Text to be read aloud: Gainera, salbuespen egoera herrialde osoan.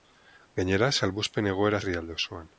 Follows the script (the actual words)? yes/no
yes